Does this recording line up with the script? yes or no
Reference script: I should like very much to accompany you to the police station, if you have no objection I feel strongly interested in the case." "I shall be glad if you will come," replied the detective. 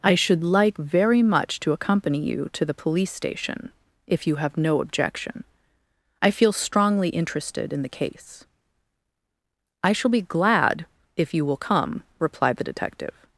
yes